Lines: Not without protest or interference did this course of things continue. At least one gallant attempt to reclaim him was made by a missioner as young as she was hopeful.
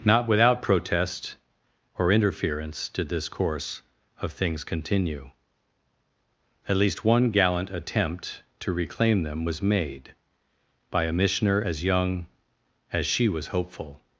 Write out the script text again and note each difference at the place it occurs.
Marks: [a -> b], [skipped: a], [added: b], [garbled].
Not without protest or interference did this course of things continue. At least one gallant attempt to reclaim [him -> them] was made by a missioner as young as she was hopeful.